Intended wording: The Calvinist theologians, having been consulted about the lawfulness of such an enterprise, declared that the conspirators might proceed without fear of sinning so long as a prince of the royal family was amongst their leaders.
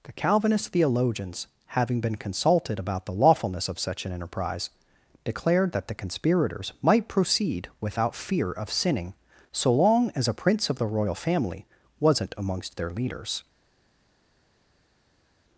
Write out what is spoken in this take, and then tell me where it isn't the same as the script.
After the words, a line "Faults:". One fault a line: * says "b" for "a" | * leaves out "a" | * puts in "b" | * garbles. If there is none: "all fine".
The Calvinist theologians, having been consulted about the lawfulness of such an enterprise, declared that the conspirators might proceed without fear of sinning so long as a prince of the royal family wasn't amongst their leaders.
Faults:
* says "wasn't" for "was"